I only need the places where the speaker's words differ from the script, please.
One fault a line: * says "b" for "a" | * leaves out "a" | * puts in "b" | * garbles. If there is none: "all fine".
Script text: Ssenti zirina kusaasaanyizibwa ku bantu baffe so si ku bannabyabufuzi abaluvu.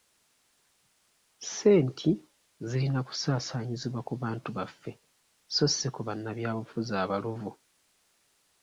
all fine